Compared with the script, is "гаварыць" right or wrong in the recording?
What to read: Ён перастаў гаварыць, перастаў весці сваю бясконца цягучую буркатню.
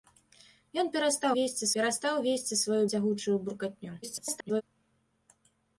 wrong